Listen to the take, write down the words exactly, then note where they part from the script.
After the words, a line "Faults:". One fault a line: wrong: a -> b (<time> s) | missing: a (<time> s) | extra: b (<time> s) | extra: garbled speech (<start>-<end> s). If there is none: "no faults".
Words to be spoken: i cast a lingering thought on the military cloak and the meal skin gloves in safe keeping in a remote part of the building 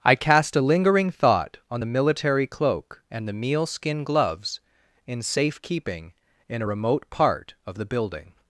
i cast a lingering thought on the military cloak and the meal skin gloves in safe keeping in a remote part of the building
Faults:
no faults